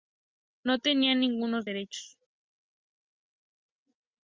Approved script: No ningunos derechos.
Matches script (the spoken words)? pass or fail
fail